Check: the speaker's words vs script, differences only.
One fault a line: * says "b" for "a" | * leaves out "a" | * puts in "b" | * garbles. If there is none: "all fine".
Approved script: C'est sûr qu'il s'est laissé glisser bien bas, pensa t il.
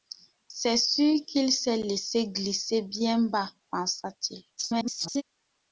* garbles